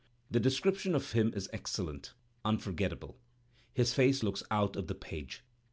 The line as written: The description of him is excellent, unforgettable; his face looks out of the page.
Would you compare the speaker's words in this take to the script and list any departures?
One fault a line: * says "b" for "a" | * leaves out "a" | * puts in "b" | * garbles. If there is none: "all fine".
all fine